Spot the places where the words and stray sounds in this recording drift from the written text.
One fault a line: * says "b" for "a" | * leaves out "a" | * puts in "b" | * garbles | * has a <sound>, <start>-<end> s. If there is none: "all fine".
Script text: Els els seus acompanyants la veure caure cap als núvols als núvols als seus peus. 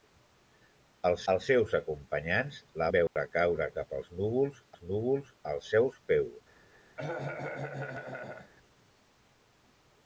* has a dropout, 3.1-3.2 s
* has a cough, 7.0-8.5 s